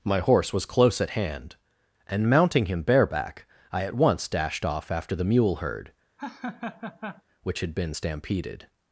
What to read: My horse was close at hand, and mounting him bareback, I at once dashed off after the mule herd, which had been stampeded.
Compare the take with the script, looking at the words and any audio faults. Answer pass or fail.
fail